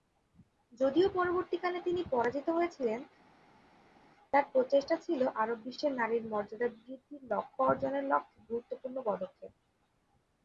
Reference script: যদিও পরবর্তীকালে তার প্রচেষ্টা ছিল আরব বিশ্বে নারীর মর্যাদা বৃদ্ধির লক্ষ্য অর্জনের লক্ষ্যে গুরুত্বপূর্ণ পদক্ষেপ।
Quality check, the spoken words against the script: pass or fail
fail